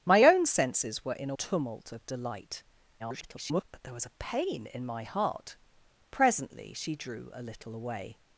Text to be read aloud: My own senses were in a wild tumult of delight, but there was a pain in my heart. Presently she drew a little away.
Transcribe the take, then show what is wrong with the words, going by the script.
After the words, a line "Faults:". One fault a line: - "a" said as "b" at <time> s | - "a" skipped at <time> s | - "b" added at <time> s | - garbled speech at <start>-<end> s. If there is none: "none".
My own senses were in a tumult of delight, [garbled] but there was a pain in my heart. Presently she drew a little away.
Faults:
- "wild" skipped at 1.4 s
- garbled speech at 3.0-3.6 s